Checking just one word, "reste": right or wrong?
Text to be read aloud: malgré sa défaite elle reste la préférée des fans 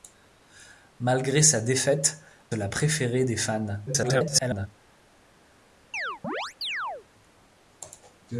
wrong